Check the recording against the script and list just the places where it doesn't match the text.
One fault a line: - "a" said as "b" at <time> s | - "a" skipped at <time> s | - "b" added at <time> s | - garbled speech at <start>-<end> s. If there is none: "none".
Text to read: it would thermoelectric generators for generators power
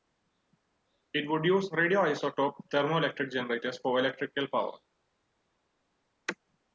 - "use radioisotope" added at 1.4 s
- "generators" said as "electrical" at 4.0 s